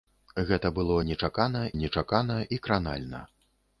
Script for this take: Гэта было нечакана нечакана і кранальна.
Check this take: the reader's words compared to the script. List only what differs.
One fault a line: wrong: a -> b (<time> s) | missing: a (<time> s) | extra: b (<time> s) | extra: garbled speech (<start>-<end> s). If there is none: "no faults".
no faults